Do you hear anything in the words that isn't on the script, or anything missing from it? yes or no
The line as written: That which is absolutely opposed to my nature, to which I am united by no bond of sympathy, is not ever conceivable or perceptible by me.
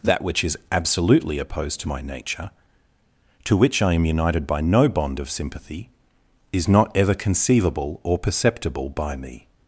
no